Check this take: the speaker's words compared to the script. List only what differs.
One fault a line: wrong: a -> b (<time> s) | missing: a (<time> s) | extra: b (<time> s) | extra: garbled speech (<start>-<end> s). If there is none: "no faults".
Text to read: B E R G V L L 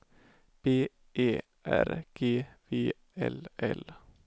no faults